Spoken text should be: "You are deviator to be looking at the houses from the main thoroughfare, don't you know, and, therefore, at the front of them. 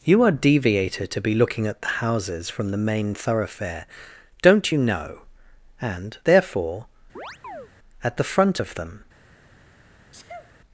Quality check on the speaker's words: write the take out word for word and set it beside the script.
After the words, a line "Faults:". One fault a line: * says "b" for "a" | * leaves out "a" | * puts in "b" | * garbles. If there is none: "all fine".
"You are deviator to be looking at the houses from the main thoroughfare, don't you know, and, therefore, at the front of them.
Faults:
all fine